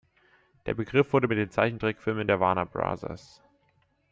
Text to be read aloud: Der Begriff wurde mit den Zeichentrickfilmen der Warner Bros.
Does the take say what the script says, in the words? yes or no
yes